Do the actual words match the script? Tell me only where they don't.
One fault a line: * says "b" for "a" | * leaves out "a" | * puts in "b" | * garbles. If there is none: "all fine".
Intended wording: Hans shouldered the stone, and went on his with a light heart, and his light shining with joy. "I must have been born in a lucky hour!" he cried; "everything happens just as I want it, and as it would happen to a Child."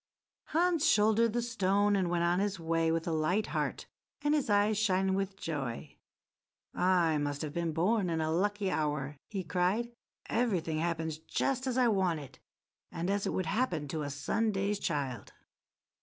* puts in "way"
* says "eyes" for "light"
* puts in "Sunday's"